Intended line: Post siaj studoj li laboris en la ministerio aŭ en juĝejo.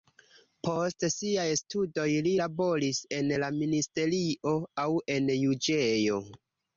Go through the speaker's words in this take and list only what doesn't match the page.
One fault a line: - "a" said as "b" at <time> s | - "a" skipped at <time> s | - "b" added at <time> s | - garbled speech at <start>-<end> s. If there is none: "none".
none